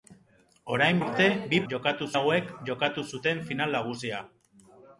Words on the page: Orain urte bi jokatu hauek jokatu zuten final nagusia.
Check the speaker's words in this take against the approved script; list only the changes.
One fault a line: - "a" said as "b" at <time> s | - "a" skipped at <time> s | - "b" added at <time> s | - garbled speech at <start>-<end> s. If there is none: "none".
none